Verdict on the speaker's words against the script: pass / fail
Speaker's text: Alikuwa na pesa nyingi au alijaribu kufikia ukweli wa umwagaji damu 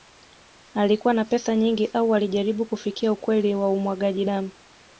pass